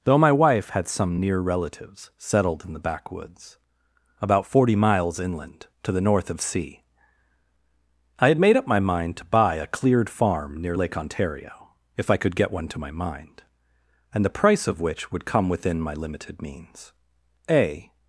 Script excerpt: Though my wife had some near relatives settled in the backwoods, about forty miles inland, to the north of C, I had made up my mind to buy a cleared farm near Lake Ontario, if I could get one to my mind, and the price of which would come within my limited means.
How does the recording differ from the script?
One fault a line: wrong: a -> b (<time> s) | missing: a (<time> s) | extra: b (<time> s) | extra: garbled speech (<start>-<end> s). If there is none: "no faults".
extra: A (17.5 s)